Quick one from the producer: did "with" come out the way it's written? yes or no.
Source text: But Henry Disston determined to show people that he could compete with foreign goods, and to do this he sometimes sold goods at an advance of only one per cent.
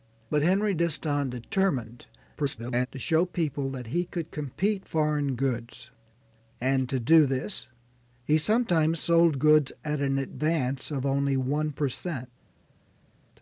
no